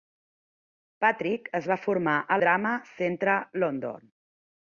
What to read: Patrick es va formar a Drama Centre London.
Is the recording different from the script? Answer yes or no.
no